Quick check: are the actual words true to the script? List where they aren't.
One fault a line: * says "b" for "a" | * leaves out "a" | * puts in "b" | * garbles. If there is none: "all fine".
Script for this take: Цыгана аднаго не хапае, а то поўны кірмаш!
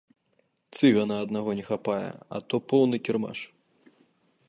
all fine